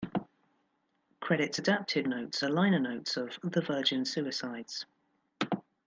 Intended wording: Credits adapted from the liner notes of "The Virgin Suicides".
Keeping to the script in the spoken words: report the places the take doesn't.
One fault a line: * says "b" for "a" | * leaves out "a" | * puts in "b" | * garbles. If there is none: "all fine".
* says "notes" for "from"